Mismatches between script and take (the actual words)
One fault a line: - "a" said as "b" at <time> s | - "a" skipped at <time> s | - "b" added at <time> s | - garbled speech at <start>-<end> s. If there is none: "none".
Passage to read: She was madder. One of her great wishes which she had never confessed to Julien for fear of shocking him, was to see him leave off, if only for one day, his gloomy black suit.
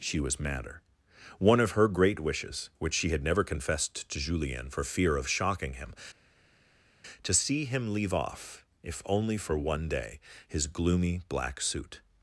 - "was" skipped at 5.9 s